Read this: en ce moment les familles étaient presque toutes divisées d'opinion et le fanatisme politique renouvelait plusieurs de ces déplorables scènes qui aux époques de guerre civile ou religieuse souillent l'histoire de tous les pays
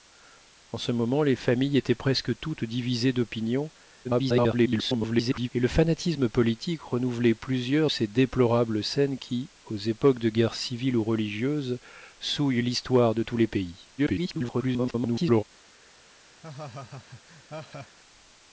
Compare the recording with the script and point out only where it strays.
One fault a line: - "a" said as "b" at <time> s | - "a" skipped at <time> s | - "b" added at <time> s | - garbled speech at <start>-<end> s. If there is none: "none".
- garbled speech at 4.0-5.5 s
- "de" skipped at 7.9 s
- garbled speech at 14.0-15.4 s